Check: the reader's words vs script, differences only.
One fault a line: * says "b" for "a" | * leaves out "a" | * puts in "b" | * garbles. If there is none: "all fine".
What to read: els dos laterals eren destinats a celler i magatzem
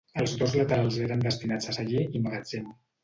all fine